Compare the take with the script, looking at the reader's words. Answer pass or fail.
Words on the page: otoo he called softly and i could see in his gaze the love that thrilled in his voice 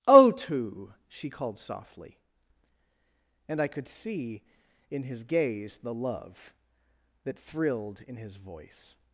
fail